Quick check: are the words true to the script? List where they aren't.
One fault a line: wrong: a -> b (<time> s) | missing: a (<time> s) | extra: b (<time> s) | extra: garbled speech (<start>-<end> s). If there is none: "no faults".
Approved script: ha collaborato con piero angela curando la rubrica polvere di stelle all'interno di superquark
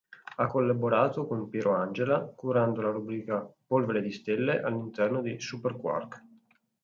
no faults